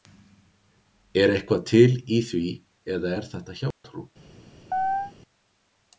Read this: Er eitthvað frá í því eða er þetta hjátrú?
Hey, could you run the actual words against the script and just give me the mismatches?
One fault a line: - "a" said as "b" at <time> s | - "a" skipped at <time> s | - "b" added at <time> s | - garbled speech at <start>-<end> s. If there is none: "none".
- "frá" said as "til" at 1.7 s